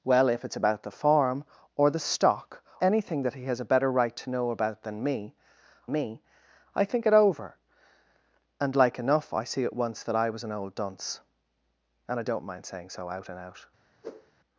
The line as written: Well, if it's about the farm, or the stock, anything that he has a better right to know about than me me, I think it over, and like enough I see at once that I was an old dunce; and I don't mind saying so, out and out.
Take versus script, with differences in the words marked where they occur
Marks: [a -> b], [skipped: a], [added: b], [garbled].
Well, if it's about the farm, or the stock, anything that he has a better right to know about than me me, I think it over, and like enough I see at once that I was an old dunce; and I don't mind saying so, out and out.